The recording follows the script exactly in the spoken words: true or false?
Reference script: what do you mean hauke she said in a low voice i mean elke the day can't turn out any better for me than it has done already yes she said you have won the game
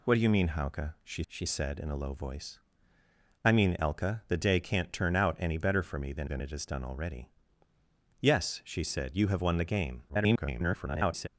false